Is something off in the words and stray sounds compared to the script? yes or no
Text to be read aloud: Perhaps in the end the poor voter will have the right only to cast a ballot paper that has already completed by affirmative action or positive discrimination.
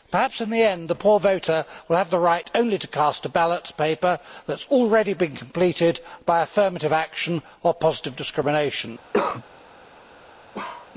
yes